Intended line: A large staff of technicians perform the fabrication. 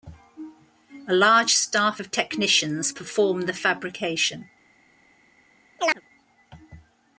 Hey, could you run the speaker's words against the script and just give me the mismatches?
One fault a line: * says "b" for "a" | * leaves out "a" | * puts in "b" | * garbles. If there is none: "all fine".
all fine